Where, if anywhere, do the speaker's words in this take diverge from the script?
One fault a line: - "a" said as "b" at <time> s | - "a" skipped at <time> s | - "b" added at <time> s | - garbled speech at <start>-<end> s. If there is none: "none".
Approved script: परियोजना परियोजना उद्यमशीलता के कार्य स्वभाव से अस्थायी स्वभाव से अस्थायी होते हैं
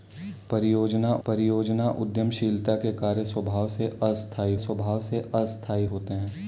none